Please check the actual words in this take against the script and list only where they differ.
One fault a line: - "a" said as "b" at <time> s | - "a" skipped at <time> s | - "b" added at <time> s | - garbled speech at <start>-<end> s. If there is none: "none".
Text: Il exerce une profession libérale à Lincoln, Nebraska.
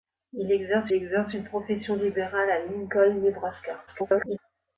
- "exerce" added at 0.9 s
- garbled speech at 3.9-4.4 s